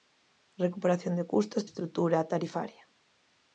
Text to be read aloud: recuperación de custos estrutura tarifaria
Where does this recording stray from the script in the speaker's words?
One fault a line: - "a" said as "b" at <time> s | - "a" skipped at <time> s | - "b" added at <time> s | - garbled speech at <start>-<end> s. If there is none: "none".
none